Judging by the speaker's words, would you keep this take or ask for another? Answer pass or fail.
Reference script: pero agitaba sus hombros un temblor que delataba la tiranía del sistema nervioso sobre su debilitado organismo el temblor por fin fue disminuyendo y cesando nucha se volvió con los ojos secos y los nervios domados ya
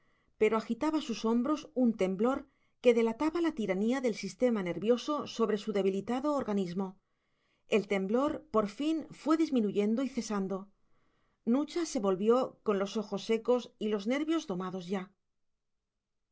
pass